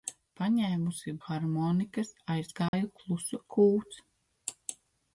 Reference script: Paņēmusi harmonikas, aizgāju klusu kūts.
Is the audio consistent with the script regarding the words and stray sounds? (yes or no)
no